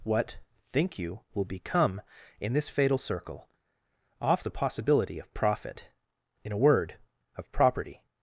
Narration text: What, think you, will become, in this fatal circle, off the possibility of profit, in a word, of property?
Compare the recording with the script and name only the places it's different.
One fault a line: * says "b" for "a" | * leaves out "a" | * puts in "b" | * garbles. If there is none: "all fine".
all fine